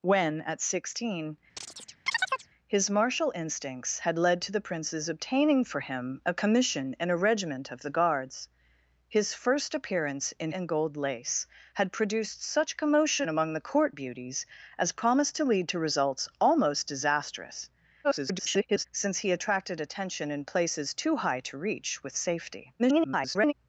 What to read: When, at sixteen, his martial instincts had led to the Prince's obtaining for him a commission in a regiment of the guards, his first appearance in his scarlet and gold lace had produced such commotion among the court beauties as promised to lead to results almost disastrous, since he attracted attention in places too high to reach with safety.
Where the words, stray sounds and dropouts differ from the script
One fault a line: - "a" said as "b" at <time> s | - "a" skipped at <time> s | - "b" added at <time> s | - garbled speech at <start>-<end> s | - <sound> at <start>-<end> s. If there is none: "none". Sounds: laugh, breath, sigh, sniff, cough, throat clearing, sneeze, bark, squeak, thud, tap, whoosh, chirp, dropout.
- chirp at 1.6-2.5 s
- "his scarlet" skipped at 10.5 s
- garbled speech at 18.0-18.8 s
- garbled speech at 22.8-23.5 s